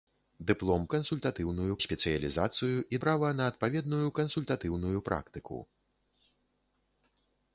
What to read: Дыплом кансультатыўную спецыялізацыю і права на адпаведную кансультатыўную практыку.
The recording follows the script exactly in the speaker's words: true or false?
true